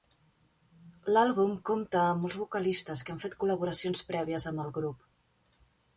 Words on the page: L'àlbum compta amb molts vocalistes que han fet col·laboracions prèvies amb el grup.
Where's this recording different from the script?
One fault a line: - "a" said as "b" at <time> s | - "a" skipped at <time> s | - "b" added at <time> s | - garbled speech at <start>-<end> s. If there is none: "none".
none